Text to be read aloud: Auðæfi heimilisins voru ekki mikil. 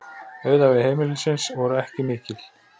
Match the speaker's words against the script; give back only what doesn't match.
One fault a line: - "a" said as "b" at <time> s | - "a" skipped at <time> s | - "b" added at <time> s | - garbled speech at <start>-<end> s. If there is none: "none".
none